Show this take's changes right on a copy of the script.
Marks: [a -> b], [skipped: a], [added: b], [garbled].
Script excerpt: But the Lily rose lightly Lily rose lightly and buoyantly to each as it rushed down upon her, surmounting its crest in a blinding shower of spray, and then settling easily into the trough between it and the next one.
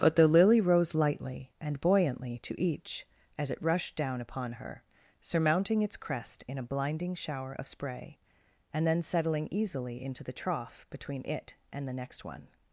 But the Lily rose lightly [skipped: Lily rose lightly] and buoyantly to each as it rushed down upon her, surmounting its crest in a blinding shower of spray, and then settling easily into the trough between it and the next one.